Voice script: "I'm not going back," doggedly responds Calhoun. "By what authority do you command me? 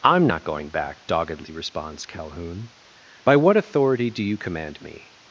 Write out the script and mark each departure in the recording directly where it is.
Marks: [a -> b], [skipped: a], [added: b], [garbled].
"I'm not going back," doggedly responds Calhoun. "By what authority do you command me?